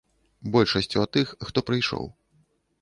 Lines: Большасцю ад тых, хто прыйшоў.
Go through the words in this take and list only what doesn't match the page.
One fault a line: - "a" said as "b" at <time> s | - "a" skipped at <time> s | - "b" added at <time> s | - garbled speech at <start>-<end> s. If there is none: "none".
none